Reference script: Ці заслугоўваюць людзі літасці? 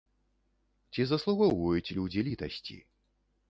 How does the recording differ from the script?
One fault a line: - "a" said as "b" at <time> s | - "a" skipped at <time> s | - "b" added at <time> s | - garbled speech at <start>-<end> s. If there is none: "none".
none